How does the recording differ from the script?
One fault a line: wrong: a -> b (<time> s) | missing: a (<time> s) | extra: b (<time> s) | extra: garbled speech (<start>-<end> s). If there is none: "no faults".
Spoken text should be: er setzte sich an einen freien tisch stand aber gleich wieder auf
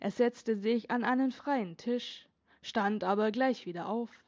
no faults